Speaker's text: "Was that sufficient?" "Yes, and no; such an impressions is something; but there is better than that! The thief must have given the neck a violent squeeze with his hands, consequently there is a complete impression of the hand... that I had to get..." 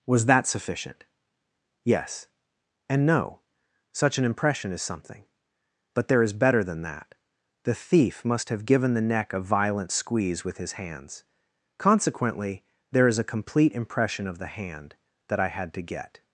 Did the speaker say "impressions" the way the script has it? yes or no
no